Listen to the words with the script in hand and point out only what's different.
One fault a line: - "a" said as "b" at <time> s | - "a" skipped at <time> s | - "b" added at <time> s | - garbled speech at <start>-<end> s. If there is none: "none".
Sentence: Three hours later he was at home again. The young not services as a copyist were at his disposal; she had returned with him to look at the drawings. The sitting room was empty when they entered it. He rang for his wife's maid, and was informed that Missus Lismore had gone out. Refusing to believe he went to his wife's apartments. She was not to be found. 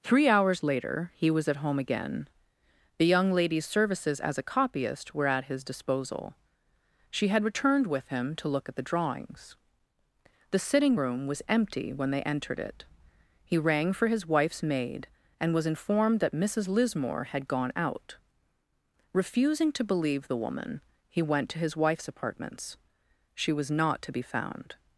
- "not" said as "lady's" at 3.3 s
- "the woman" added at 20.3 s